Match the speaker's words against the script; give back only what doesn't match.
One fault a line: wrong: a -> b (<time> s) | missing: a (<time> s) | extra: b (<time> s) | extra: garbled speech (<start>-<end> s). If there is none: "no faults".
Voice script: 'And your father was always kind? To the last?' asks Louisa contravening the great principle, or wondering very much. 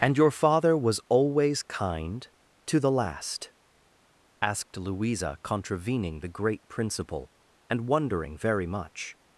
wrong: asks -> asked (4.4 s)
wrong: or -> and (7.7 s)